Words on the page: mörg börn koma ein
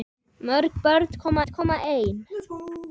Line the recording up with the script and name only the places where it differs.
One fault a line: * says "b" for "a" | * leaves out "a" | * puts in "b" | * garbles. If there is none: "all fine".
* puts in "koma"